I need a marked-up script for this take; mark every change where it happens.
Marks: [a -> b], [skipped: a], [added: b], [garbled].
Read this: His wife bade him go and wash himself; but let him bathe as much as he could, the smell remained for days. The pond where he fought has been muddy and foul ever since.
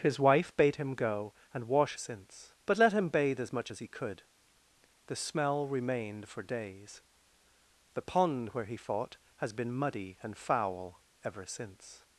His wife bade him go and wash [himself; -> since] but let him bathe as much as he could, the smell remained for days. The pond where he fought has been muddy and foul ever since.